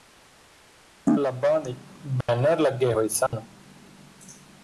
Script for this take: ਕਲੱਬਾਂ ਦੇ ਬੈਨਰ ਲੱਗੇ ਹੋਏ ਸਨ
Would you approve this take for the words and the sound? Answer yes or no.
no